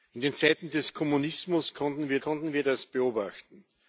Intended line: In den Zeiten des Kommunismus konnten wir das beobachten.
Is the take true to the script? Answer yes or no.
no